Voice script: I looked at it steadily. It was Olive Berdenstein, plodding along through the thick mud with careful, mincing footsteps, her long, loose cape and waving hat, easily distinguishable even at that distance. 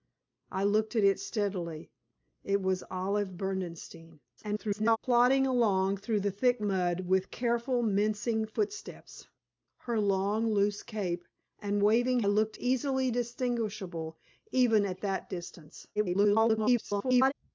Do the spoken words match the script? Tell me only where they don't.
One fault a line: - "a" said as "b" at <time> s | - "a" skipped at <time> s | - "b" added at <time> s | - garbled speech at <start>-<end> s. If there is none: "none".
- garbled speech at 4.4-5.0 s
- "hat" said as "looked" at 12.3 s
- garbled speech at 16.0-17.3 s